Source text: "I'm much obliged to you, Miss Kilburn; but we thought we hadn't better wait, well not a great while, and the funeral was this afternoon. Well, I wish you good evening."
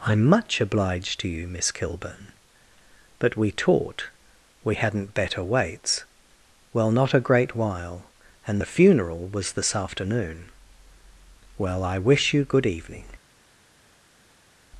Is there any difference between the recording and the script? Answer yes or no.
yes